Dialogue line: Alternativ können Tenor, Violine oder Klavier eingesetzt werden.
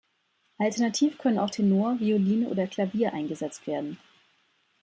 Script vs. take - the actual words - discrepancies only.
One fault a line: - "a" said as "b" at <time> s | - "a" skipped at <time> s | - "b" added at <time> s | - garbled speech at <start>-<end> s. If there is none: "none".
- "auch" added at 1.4 s